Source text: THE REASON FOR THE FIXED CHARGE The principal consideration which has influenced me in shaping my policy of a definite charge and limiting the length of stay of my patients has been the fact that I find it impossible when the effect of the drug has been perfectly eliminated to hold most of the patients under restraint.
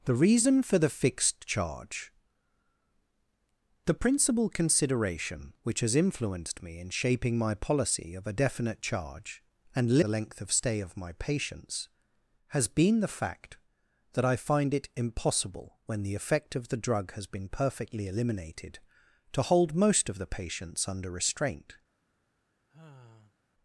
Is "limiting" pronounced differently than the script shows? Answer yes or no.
yes